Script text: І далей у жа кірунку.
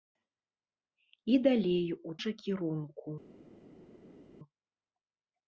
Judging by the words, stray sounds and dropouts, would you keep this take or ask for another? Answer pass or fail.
pass